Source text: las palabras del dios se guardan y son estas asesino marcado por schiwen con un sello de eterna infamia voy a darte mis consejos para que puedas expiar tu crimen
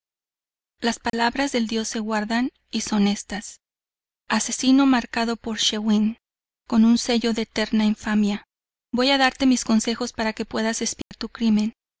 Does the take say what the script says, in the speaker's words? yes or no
yes